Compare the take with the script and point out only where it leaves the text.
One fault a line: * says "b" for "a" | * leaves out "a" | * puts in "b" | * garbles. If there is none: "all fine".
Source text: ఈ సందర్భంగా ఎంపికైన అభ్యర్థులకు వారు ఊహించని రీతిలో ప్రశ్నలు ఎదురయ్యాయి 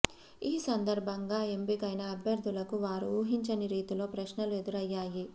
all fine